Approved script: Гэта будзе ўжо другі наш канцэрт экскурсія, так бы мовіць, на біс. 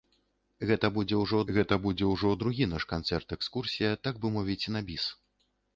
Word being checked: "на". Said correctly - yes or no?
yes